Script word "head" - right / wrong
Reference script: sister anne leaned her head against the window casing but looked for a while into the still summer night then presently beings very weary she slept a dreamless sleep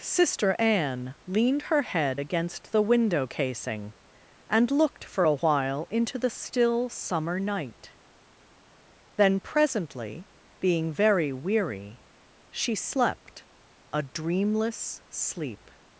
right